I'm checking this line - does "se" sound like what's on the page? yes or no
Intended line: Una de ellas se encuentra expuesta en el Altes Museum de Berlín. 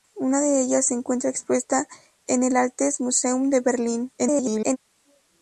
yes